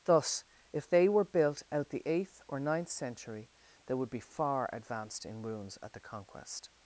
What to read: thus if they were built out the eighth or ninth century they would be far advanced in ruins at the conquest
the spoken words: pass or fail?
pass